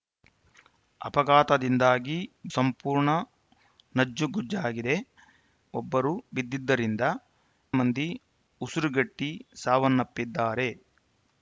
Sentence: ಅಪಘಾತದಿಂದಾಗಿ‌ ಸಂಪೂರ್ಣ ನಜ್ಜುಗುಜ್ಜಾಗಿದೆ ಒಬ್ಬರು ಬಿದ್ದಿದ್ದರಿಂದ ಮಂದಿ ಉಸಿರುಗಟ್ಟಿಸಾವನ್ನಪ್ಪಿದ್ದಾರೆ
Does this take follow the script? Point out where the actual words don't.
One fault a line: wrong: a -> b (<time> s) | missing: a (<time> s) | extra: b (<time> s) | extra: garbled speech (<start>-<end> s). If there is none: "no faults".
no faults